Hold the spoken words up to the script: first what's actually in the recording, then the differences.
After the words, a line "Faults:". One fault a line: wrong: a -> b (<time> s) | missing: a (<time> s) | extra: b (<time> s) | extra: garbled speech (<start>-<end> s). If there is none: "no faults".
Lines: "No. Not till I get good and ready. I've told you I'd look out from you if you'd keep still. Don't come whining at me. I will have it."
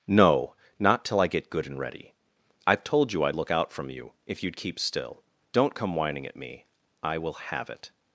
"No. Not till I get good and ready. I've told you I'd look out from you if you'd keep still. Don't come whining at me. I will have it."
Faults:
no faults